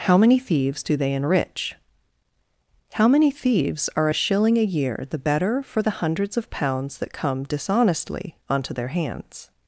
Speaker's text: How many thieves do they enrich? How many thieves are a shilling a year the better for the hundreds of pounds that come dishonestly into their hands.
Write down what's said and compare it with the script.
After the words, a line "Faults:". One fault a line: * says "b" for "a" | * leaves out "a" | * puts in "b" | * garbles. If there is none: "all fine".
How many thieves do they enrich? How many thieves are a shilling a year the better for the hundreds of pounds that come dishonestly onto their hands.
Faults:
* says "onto" for "into"